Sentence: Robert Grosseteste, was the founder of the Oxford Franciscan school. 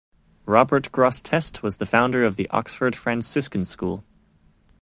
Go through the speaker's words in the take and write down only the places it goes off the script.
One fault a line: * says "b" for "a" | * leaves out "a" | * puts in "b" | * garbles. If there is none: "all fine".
all fine